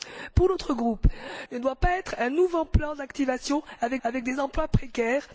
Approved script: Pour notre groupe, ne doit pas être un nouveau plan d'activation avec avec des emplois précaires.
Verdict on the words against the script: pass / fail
pass